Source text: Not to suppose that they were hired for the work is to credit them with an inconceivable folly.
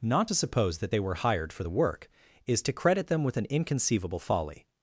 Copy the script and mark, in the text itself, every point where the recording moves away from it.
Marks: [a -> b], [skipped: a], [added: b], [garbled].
Not to suppose that they were hired for the work is to credit them with an inconceivable folly.